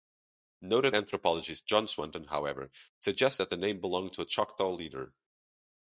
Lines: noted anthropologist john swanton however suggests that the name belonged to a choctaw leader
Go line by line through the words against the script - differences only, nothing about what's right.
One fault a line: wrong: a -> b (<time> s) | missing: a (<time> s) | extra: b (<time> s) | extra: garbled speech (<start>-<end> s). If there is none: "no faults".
no faults